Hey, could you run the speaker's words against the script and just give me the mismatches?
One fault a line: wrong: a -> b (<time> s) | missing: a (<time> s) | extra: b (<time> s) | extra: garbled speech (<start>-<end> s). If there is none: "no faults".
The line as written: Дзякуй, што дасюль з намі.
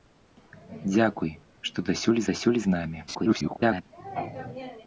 extra: дасюль (2.3 s)
extra: garbled speech (3.1-3.8 s)